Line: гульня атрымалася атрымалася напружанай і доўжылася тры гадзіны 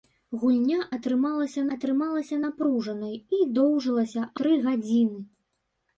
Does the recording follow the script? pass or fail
pass